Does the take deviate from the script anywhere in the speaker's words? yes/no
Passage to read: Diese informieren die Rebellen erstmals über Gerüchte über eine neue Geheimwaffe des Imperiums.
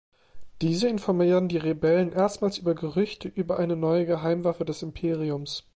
no